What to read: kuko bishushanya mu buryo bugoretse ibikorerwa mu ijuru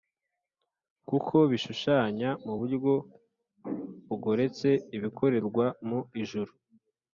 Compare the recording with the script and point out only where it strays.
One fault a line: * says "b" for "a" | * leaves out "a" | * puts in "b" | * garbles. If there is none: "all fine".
all fine